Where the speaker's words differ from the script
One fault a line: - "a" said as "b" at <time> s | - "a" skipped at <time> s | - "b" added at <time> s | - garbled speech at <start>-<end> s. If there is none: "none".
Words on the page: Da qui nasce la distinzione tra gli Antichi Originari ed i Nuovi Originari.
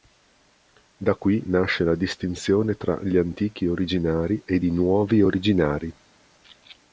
none